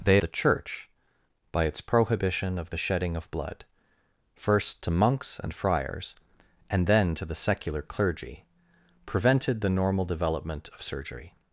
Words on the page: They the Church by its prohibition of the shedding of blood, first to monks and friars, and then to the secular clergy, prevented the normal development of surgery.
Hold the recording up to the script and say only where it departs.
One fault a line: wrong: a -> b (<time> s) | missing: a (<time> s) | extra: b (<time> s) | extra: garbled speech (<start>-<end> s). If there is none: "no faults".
no faults